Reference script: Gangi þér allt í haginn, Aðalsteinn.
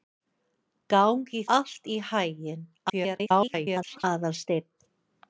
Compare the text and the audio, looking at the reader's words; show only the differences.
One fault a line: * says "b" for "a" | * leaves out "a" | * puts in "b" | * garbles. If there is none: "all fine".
* leaves out "þér"
* garbles